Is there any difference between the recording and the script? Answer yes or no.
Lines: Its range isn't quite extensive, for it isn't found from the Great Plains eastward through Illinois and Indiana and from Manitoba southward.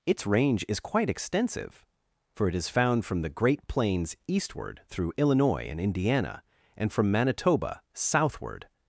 yes